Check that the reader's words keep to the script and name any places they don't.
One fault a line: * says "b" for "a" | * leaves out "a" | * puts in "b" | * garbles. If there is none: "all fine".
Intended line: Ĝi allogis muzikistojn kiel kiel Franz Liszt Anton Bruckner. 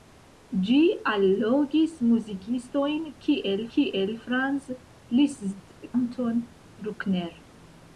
all fine